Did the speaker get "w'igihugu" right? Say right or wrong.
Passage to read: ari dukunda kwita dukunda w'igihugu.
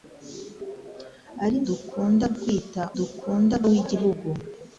right